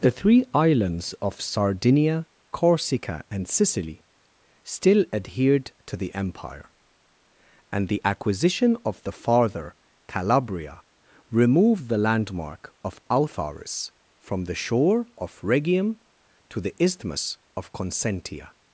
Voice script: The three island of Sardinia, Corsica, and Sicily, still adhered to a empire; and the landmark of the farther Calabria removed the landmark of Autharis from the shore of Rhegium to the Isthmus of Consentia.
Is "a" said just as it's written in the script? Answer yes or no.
no